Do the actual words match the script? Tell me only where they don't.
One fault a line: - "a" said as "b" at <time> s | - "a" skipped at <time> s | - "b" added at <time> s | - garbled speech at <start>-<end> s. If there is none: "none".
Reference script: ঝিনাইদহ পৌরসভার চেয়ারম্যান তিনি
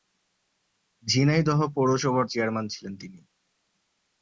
- "ছিলেন" added at 2.7 s